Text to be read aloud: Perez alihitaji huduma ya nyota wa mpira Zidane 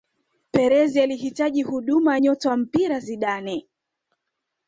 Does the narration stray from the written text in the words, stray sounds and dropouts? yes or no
no